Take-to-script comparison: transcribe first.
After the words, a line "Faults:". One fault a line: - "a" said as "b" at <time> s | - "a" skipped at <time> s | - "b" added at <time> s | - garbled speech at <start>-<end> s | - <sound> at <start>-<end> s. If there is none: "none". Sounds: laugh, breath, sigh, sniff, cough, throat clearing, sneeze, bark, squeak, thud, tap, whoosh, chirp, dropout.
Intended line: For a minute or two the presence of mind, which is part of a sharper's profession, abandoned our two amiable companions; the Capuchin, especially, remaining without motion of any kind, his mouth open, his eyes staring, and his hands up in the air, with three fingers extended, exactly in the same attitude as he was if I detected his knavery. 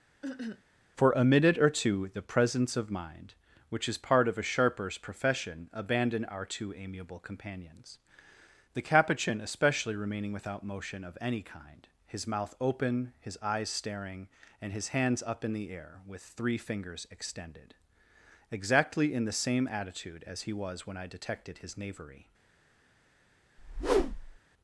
For a minute or two the presence of mind, which is part of a sharper's profession, abandoned our two amiable companions; the Capuchin, especially, remaining without motion of any kind, his mouth open, his eyes staring, and his hands up in the air, with three fingers extended, exactly in the same attitude as he was when I detected his knavery.
Faults:
- cough at 0.2-0.6 s
- "if" said as "when" at 20.9 s
- whoosh at 23.6-24.4 s